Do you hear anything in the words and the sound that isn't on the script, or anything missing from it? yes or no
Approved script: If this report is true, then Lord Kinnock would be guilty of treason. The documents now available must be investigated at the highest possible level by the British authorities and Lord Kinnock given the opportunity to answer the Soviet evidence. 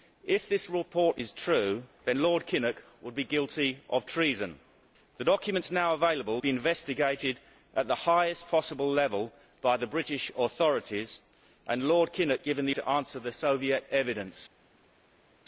yes